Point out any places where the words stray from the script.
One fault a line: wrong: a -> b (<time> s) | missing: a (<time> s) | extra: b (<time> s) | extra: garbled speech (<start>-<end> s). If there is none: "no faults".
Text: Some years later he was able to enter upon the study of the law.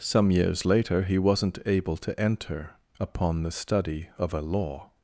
wrong: was -> wasn't (1.2 s)
wrong: the -> a (4.3 s)